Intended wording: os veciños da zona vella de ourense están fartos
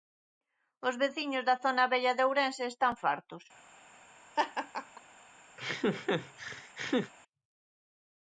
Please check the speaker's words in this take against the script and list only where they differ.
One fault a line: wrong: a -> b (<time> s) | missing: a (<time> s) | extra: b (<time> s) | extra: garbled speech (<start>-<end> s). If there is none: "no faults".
no faults